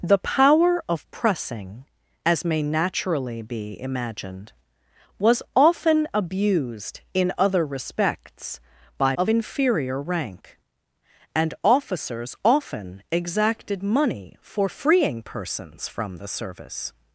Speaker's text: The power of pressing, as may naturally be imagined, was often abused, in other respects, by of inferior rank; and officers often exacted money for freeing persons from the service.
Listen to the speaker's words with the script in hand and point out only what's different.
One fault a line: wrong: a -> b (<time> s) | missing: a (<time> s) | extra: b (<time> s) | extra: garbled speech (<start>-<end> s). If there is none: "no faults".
no faults